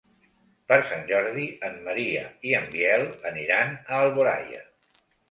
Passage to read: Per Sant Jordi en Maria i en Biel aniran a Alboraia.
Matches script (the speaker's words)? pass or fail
pass